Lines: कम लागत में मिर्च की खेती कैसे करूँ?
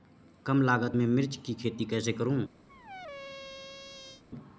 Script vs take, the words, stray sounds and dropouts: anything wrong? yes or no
yes